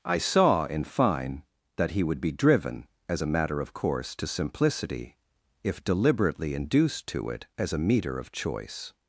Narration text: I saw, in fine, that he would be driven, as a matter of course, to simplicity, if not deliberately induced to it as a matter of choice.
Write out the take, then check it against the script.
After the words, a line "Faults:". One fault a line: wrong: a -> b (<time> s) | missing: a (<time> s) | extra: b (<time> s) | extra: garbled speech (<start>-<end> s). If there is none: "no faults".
I saw, in fine, that he would be driven, as a matter of course, to simplicity, if deliberately induced to it as a meter of choice.
Faults:
missing: not (5.8 s)
wrong: matter -> meter (7.8 s)